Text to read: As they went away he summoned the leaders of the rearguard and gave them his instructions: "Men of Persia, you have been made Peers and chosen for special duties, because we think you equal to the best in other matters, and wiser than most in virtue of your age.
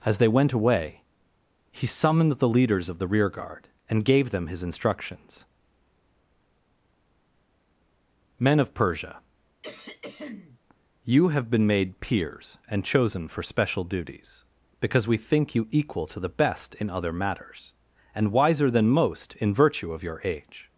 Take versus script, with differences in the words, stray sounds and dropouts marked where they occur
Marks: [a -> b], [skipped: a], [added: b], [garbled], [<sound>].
As they went away he summoned the leaders of the rearguard and gave them his instructions: "Men of Persia, [throat clearing] you have been made Peers and chosen for special duties, because we think you equal to the best in other matters, and wiser than most in virtue of your age.